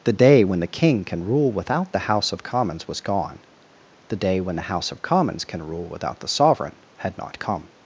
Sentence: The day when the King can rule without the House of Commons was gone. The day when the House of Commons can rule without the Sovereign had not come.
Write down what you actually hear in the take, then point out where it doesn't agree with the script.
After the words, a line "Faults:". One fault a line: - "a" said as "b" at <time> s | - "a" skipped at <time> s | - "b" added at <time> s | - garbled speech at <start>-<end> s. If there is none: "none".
The day when the King can rule without the House of Commons was gone. The day when the House of Commons can rule without the Sovereign had not come.
Faults:
none